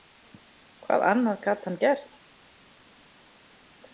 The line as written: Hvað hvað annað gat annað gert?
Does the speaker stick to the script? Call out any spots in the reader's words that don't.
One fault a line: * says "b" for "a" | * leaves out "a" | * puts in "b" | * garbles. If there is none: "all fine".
* leaves out "hvað"
* says "hann" for "annað"